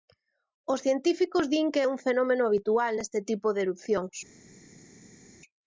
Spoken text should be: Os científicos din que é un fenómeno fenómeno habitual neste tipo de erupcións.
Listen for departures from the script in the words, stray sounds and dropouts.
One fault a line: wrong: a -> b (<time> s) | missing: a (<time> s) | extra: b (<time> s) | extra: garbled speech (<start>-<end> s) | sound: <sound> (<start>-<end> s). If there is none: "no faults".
missing: fenómeno (2.4 s)